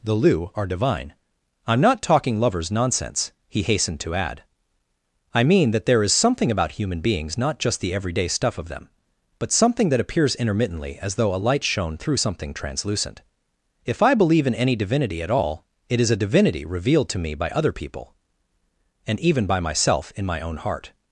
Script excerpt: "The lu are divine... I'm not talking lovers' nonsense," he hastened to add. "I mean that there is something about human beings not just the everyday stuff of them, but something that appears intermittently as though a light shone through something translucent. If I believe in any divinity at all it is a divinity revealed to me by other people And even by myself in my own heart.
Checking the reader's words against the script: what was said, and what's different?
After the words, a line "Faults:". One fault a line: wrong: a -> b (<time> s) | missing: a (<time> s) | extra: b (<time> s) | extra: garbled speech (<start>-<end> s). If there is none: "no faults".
"The lu are divine... I'm not talking lovers' nonsense," he hastened to add. "I mean that there is something about human beings not just the everyday stuff of them, but something that appears intermittently as though a light shone through something translucent. If I believe in any divinity at all it is a divinity revealed to me by other people And even by myself in my own heart.
Faults:
no faults